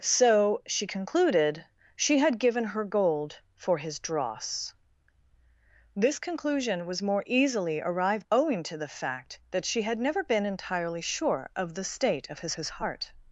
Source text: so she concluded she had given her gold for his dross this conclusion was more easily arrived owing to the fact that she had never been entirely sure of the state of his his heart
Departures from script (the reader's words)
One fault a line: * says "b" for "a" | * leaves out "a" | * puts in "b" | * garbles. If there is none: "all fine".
all fine